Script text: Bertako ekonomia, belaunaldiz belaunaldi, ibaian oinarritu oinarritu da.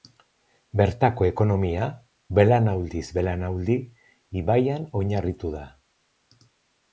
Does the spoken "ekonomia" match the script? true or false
true